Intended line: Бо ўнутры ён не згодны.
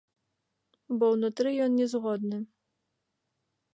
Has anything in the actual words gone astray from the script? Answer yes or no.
no